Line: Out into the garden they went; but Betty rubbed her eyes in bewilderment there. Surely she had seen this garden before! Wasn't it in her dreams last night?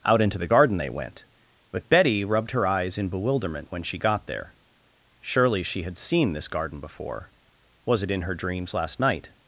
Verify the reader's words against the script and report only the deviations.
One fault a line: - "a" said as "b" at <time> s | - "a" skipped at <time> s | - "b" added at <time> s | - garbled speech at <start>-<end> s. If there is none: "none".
- "when she got" added at 3.7 s
- "Wasn't" said as "Was" at 7.8 s